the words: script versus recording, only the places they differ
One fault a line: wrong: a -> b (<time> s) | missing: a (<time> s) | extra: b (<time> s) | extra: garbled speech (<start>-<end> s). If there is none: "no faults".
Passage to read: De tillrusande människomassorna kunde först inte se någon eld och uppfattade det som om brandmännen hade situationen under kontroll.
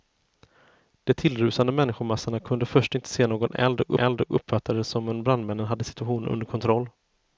extra: eld och (4.0 s)